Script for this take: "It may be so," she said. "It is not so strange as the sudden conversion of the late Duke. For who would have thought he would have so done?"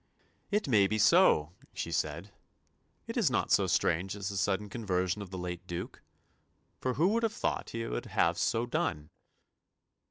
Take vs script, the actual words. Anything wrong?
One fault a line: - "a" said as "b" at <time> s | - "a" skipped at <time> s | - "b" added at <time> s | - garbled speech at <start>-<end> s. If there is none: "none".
none